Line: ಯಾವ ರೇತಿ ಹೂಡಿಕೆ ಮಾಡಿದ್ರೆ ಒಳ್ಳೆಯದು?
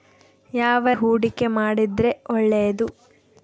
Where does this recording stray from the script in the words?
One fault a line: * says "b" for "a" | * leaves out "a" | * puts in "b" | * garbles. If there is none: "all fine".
* leaves out "ರೇತಿ"